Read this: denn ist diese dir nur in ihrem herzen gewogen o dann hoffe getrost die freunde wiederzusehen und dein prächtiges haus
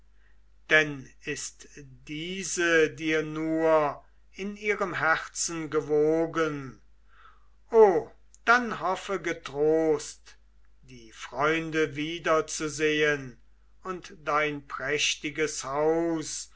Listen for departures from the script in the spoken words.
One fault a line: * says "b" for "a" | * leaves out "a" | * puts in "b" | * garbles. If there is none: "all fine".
all fine